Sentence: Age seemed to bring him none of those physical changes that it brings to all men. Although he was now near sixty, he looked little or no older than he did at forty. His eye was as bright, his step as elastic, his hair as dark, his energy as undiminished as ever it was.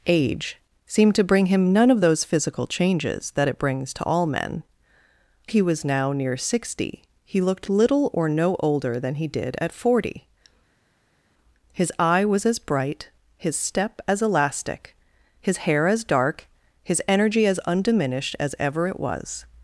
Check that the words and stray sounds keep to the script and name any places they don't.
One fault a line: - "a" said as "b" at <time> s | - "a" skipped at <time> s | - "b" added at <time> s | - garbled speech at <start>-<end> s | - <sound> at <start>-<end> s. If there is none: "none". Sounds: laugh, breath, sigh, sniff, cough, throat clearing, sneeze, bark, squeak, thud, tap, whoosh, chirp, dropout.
- "Although" skipped at 4.6 s